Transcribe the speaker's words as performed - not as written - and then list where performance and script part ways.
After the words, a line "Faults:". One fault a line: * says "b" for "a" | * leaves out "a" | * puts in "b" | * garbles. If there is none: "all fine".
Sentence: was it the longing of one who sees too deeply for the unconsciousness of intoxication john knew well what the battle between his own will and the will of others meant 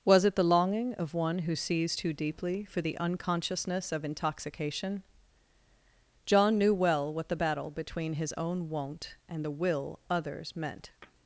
was it the longing of one who sees too deeply for the unconsciousness of intoxication john knew well what the battle between his own won't and the will others meant
Faults:
* says "won't" for "will"
* leaves out "of"